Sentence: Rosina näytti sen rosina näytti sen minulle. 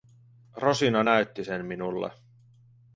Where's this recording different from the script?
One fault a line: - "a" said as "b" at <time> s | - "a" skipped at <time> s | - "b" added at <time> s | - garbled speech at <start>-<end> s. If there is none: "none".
- "rosina näytti sen" skipped at 1.7 s